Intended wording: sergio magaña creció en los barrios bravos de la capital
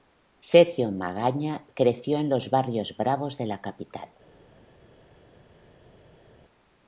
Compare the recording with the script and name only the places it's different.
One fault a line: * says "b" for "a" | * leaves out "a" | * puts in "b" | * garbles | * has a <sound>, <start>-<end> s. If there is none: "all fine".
all fine